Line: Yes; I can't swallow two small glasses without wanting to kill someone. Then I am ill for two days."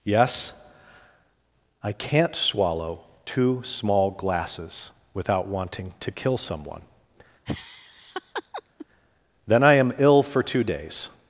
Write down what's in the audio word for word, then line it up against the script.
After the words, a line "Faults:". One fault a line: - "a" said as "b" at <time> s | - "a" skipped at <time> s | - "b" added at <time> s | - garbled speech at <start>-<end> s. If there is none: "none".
Yes; I can't swallow two small glasses without wanting to kill someone. Then I am ill for two days."
Faults:
none